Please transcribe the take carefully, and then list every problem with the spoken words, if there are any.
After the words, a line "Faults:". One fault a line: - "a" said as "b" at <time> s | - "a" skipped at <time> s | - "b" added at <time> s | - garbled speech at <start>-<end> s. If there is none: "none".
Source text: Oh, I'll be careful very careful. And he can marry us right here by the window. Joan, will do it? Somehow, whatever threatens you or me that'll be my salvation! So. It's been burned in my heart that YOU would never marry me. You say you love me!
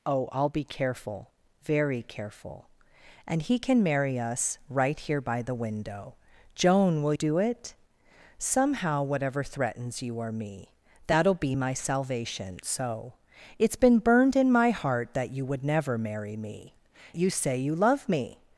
Oh, I'll be careful very careful. And he can marry us right here by the window. Joan, will do it? Somehow, whatever threatens you or me that'll be my salvation! So. It's been burned in my heart that YOU would never marry me. You say you love me!
Faults:
none